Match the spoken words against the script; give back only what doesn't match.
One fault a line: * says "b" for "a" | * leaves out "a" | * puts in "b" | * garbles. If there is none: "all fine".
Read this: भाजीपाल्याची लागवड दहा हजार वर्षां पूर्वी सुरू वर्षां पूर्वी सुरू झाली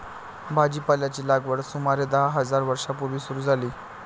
* puts in "सुमारे"
* leaves out "वर्षां पूर्वी सुरू"